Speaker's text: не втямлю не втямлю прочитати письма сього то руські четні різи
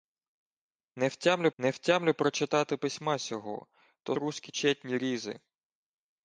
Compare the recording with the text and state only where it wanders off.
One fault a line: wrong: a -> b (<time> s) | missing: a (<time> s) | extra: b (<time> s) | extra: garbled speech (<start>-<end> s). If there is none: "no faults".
no faults